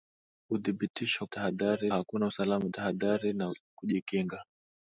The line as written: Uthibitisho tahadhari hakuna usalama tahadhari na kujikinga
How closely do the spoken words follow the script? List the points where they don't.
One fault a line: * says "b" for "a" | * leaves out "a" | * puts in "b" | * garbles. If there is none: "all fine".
all fine